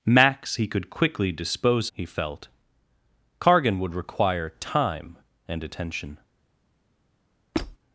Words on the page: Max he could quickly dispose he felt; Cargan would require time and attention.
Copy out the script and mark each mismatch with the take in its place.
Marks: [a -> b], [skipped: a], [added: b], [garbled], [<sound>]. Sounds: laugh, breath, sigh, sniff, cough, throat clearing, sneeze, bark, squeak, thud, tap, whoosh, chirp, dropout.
Max he could quickly dispose he felt; Cargan would require time and attention. [squeak]